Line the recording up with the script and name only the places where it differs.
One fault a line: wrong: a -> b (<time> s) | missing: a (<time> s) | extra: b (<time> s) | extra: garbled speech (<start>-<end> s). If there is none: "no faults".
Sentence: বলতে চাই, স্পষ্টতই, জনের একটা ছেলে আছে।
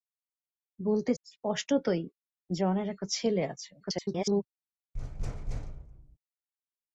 missing: চাই (1.1 s)
extra: garbled speech (3.8-4.4 s)